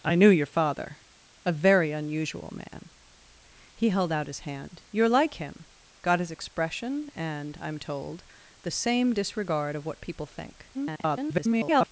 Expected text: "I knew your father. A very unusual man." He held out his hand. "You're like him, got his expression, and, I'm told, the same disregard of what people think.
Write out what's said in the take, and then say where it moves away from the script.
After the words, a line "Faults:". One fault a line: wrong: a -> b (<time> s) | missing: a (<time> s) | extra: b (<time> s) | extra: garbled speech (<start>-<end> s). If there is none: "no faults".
"I knew your father. A very unusual man." He held out his hand. "You're like him, got his expression, and, I'm told, the same disregard of what people think. [garbled]
Faults:
extra: garbled speech (10.7-11.9 s)